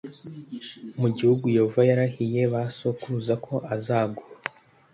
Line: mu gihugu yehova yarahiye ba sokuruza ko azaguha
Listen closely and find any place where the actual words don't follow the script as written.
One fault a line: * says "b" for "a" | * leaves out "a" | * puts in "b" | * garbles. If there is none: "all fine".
all fine